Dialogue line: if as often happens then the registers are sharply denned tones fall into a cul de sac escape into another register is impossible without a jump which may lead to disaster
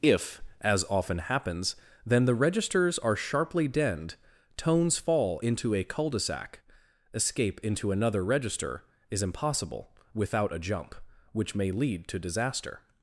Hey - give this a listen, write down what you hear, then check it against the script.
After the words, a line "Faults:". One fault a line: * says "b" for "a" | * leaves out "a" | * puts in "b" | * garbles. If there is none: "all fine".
if as often happens then the registers are sharply denned tones fall into a cul de sac escape into another register is impossible without a jump which may lead to disaster
Faults:
all fine